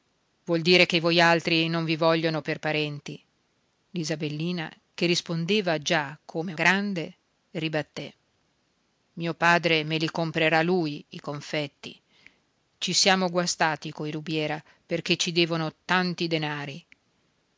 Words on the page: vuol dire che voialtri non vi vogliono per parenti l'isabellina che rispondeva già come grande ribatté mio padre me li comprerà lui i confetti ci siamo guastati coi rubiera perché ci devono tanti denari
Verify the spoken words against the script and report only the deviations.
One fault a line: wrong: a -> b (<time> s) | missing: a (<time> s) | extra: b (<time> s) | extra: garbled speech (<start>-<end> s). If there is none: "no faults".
no faults